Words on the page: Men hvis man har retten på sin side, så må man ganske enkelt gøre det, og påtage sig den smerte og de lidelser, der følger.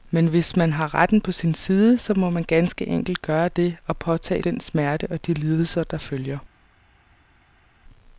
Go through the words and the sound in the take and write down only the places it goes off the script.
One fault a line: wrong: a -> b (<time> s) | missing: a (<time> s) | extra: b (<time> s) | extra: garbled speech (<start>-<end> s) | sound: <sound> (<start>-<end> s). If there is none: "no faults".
missing: sig (4.4 s)